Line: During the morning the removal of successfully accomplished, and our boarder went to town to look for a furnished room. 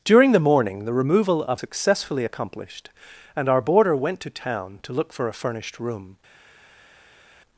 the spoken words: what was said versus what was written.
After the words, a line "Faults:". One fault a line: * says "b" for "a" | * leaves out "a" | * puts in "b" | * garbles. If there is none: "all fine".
During the morning the removal of successfully accomplished, and our boarder went to town to look for a furnished room.
Faults:
all fine